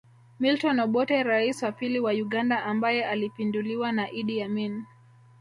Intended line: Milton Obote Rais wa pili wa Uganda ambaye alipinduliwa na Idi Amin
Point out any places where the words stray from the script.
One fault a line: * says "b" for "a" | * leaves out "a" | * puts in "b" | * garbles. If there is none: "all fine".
all fine